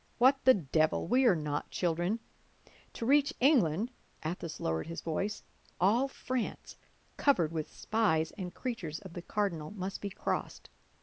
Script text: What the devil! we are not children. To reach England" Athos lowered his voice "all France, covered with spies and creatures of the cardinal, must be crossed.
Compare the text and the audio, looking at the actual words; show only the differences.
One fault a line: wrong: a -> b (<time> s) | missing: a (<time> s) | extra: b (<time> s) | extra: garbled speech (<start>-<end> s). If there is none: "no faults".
no faults